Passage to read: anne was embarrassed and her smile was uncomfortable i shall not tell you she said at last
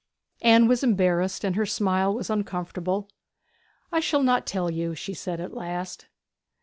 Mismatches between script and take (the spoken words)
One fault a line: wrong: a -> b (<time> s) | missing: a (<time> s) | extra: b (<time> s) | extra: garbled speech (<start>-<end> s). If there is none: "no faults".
no faults